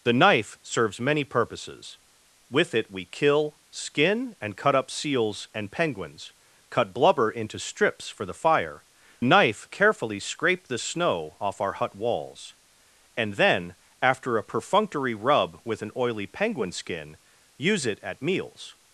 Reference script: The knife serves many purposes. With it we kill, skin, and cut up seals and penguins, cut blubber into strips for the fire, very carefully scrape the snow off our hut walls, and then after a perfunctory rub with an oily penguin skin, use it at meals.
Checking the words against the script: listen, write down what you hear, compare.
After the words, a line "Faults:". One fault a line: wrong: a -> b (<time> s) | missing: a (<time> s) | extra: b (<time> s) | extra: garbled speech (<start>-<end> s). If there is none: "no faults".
The knife serves many purposes. With it we kill, skin, and cut up seals and penguins, cut blubber into strips for the fire, knife carefully scrape the snow off our hut walls, and then after a perfunctory rub with an oily penguin skin, use it at meals.
Faults:
wrong: very -> knife (9.2 s)